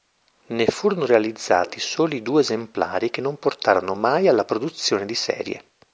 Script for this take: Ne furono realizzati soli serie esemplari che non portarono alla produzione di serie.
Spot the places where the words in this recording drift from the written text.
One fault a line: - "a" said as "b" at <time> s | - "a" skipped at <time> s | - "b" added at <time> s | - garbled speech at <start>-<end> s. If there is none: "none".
- "serie" said as "due" at 2.2 s
- "mai" added at 3.9 s